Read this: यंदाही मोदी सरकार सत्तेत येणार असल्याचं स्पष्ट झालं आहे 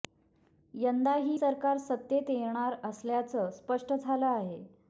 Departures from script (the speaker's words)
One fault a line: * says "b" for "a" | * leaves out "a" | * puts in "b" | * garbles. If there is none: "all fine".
* leaves out "मोदी"